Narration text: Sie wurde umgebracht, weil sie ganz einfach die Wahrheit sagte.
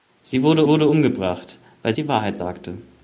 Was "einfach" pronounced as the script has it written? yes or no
no